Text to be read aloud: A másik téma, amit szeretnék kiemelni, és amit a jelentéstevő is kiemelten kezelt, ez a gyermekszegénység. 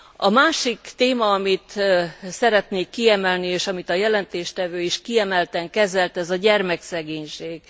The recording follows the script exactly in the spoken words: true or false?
true